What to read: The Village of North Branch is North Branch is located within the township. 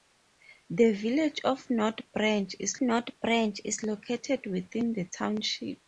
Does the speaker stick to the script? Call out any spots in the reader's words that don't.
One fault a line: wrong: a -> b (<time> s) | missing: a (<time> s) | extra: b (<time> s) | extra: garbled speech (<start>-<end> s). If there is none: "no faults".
no faults